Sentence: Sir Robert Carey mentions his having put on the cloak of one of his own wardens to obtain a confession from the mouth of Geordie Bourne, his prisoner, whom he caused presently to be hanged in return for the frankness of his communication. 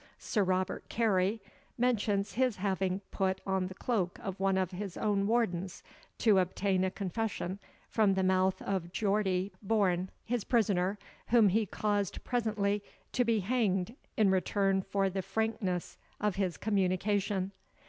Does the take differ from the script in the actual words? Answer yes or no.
no